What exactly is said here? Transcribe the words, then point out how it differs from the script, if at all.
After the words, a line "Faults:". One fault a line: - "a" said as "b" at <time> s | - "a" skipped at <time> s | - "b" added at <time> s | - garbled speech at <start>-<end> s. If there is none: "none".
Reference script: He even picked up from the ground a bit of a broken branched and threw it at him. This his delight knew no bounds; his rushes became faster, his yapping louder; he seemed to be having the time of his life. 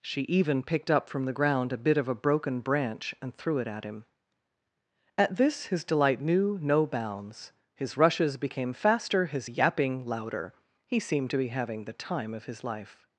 She even picked up from the ground a bit of a broken branch and threw it at him. At this his delight knew no bounds; his rushes became faster, his yapping louder; he seemed to be having the time of his life.
Faults:
- "He" said as "She" at 0.0 s
- "branched" said as "branch" at 2.6 s
- "At" added at 5.2 s